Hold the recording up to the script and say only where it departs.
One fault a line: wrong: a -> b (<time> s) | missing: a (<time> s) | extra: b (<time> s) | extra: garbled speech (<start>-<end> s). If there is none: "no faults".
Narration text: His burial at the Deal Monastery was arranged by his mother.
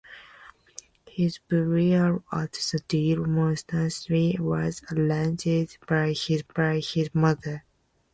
extra: by his (6.5 s)